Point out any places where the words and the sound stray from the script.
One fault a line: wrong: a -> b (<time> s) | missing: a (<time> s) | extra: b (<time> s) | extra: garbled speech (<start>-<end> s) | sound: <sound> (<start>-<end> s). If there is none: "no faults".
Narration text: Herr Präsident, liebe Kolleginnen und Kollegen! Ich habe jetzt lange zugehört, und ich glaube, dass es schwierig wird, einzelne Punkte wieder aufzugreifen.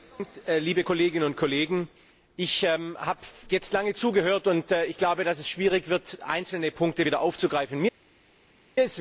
no faults